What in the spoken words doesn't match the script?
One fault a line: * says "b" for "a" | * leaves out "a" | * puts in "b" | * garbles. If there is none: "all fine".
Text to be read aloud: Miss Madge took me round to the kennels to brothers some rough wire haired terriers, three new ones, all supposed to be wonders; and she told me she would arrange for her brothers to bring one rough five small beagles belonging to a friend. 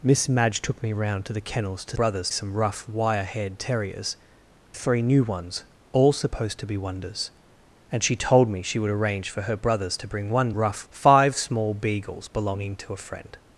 all fine